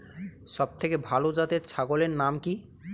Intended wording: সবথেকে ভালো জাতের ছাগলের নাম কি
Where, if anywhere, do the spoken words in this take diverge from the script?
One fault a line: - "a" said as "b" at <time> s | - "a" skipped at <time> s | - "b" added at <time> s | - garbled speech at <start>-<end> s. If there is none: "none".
none